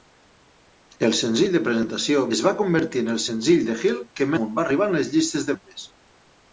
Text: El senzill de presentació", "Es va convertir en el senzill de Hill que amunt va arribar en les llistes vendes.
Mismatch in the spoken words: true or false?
false